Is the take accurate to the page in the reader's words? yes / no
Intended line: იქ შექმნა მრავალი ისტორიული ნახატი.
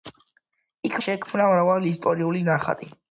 yes